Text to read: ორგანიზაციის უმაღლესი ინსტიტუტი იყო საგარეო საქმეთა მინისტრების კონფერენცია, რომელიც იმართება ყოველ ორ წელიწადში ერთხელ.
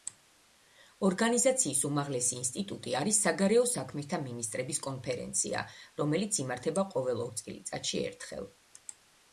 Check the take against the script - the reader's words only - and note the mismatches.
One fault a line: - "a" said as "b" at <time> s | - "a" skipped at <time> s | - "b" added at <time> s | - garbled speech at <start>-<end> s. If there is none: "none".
- "იყო" said as "არის" at 3.0 s